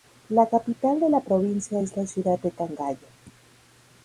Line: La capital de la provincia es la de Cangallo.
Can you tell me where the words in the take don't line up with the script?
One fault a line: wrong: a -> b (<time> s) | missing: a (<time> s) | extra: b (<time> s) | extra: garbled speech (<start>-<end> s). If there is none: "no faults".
extra: ciudad (2.1 s)